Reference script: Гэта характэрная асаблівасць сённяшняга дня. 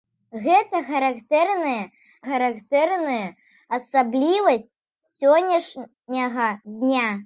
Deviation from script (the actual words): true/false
true